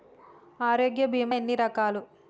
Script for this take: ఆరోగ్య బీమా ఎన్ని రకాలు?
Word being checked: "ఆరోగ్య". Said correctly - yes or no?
yes